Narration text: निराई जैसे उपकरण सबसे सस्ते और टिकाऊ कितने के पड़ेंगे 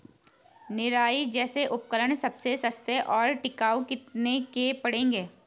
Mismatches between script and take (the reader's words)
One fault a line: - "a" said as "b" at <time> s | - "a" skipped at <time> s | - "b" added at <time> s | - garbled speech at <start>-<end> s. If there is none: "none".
none